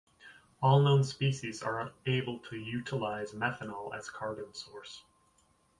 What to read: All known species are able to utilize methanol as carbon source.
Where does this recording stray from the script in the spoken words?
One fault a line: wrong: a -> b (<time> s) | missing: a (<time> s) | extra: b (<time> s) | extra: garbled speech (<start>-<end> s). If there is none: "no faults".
no faults